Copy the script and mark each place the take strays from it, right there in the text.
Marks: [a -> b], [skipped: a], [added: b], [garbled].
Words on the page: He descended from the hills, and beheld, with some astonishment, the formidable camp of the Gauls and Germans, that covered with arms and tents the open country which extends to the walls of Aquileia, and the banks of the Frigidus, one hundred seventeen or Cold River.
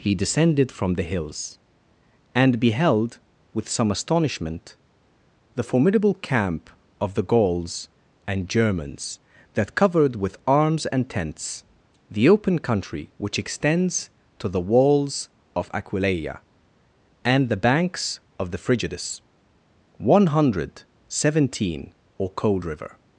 He descended from the hills, and beheld, with some astonishment, the formidable camp of the Gauls and Germans, that covered with arms and tents the open country which extends to the walls of Aquileia, and the banks of the Frigidus, one hundred seventeen or Cold River.